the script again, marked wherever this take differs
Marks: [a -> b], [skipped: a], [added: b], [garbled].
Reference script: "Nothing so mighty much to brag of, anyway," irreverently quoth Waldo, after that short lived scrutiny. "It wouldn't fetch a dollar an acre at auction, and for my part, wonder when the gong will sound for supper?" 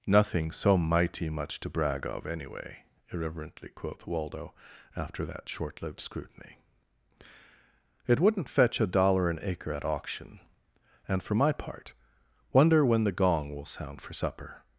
"Nothing so mighty much to brag of, anyway," irreverently quoth Waldo, after that short lived scrutiny. "It wouldn't fetch a dollar an acre at auction, and for my part, wonder when the gong will sound for supper?"